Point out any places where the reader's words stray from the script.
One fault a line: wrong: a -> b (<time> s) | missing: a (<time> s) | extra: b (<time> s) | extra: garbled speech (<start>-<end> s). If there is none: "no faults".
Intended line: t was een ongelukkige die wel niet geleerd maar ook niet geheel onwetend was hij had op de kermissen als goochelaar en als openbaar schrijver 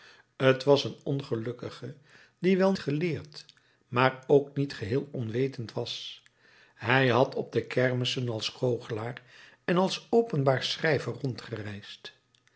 missing: niet (2.7 s)